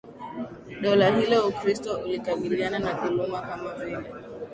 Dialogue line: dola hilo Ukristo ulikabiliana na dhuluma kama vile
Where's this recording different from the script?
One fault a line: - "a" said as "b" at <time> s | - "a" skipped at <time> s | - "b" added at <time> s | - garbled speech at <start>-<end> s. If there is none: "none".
none